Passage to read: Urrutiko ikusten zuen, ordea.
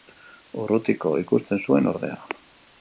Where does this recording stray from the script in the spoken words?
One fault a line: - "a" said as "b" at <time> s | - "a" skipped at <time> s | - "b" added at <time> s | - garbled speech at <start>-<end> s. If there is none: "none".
none